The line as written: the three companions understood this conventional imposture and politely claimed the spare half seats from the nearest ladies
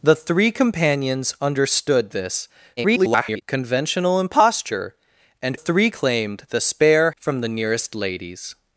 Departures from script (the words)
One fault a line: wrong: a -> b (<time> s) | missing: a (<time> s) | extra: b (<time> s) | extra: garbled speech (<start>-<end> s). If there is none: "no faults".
extra: garbled speech (2.8-3.4 s)
wrong: politely -> three (5.5 s)
missing: half seats (7.1 s)